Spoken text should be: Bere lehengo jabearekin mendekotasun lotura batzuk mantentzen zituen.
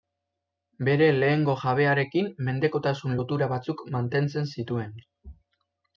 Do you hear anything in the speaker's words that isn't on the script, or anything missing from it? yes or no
no